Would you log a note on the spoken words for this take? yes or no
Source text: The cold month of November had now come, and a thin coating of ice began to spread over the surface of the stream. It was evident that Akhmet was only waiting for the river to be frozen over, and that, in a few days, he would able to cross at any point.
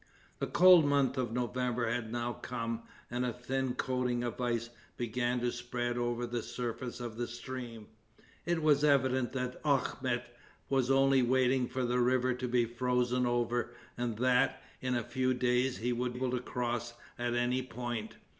no